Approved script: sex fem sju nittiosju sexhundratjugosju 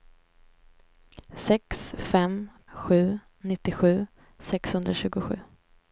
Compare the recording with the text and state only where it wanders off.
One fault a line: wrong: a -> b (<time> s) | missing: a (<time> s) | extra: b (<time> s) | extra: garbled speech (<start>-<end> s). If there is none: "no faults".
no faults